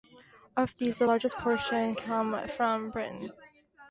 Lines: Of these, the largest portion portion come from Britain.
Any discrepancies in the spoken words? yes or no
yes